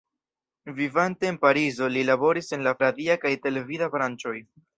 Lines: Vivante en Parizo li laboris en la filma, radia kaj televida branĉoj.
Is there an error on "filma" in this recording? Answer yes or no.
yes